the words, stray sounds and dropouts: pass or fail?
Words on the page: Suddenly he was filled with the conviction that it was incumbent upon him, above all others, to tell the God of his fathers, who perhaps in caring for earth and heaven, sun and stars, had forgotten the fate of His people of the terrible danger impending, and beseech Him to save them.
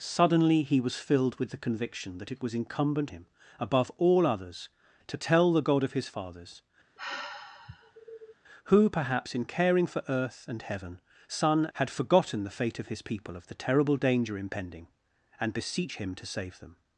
fail